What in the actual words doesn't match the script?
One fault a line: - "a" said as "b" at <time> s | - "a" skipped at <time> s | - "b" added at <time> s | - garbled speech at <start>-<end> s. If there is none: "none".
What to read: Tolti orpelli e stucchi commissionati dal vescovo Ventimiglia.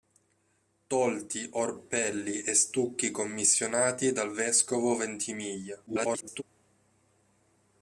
- garbled speech at 5.9-6.4 s